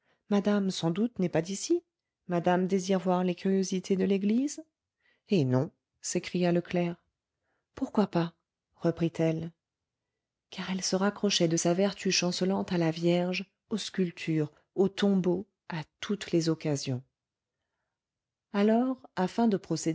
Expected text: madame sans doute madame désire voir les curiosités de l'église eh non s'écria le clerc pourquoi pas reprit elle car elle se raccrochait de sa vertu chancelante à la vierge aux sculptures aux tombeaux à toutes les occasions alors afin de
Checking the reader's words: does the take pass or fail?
fail